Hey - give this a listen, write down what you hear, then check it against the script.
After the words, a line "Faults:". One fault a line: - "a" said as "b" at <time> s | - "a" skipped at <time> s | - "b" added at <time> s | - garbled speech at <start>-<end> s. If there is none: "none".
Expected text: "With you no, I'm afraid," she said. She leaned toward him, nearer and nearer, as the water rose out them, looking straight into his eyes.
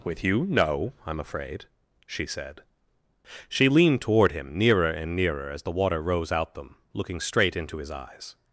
"With you no, I'm afraid," she said. She leaned toward him, nearer and nearer, as the water rose out them, looking straight into his eyes.
Faults:
none